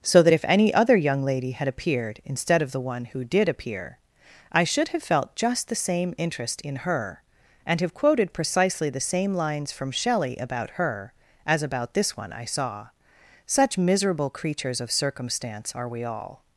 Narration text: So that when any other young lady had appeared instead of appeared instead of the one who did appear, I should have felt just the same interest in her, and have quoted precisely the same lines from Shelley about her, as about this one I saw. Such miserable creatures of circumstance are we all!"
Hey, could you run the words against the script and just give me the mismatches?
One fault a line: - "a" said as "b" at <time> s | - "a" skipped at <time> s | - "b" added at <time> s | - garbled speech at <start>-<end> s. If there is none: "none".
- "when" said as "if" at 0.3 s
- "appeared instead of" skipped at 2.7 s